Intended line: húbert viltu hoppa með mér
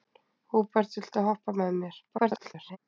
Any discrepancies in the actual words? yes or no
yes